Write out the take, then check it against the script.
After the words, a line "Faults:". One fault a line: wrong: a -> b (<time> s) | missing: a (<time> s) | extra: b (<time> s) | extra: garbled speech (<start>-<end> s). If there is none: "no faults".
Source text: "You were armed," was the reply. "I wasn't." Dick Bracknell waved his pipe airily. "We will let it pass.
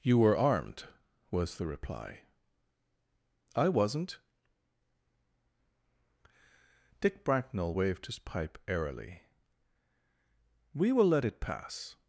"You were armed," was the reply. "I wasn't." Dick Bracknell waved his pipe airily. "We will let it pass.
Faults:
no faults